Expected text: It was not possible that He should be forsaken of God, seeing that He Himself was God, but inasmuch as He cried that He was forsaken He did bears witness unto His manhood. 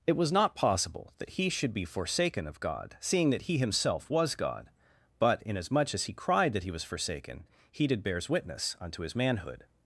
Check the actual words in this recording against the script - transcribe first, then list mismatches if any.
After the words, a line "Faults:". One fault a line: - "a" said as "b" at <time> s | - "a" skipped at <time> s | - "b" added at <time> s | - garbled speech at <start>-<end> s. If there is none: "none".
It was not possible that He should be forsaken of God, seeing that He Himself was God, but inasmuch as He cried that He was forsaken He did bears witness unto His manhood.
Faults:
none